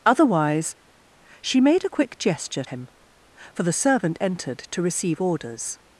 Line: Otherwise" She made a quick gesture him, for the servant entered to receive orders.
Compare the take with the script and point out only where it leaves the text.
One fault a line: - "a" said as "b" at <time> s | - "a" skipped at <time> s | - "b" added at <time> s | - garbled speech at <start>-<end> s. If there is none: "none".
none